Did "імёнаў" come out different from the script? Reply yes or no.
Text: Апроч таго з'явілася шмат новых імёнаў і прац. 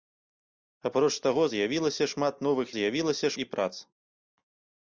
yes